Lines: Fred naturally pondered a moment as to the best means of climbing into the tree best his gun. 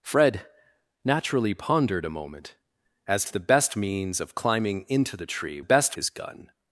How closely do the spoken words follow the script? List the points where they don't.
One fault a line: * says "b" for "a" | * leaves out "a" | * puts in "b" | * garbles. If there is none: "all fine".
all fine